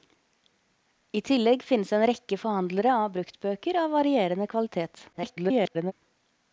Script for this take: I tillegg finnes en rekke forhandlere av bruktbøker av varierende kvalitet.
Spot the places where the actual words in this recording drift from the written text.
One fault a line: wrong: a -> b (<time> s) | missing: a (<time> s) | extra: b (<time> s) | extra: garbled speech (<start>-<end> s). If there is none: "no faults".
extra: garbled speech (5.1-5.9 s)